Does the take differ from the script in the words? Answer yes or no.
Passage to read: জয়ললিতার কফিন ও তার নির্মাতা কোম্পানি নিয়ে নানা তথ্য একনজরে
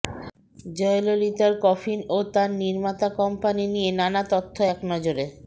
no